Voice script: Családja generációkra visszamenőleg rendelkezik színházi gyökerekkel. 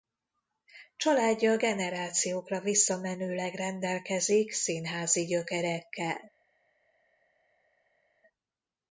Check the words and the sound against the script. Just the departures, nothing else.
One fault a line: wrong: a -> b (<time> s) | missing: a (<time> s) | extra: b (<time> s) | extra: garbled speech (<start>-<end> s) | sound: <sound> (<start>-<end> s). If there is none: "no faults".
no faults